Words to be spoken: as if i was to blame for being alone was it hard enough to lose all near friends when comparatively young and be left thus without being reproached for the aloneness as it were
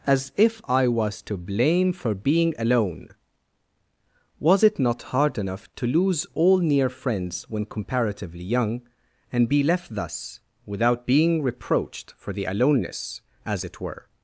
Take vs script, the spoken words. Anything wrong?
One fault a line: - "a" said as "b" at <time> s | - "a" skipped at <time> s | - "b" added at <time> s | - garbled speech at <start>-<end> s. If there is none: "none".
- "not" added at 4.8 s